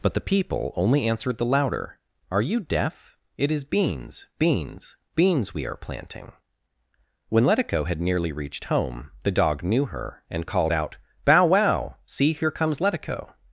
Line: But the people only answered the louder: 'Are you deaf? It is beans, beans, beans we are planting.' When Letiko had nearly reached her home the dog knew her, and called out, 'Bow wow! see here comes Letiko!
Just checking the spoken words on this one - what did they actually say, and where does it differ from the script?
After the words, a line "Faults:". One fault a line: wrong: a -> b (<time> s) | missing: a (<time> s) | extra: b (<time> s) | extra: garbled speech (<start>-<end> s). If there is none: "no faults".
But the people only answered the louder: 'Are you deaf? It is beans, beans, beans we are planting.' When Letiko had nearly reached home the dog knew her, and called out, 'Bow wow! see here comes Letiko!
Faults:
missing: her (8.7 s)